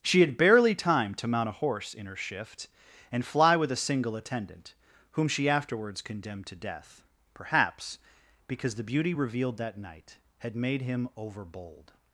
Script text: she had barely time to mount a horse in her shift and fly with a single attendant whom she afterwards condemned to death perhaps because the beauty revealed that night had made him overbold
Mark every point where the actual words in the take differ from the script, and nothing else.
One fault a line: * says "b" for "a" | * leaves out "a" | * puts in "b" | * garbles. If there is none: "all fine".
all fine